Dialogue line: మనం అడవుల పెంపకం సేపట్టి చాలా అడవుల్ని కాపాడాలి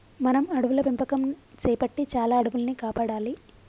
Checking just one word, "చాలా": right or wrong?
right